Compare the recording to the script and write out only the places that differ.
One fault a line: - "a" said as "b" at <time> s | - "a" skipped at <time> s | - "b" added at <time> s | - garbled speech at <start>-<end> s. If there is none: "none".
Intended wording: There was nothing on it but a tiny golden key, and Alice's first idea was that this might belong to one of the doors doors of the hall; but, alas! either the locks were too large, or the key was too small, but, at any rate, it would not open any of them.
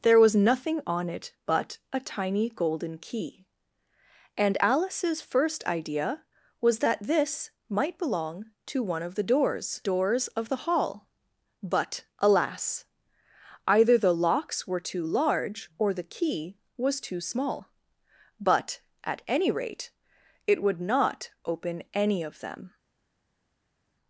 none